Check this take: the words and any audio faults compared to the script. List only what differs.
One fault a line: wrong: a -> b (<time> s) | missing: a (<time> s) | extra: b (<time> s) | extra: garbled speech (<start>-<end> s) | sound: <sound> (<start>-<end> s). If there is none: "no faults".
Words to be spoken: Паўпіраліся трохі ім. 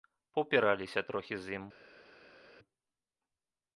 extra: з (1.4 s)